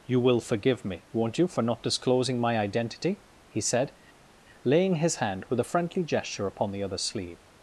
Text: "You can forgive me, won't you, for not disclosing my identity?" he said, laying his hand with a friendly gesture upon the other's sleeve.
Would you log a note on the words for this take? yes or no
yes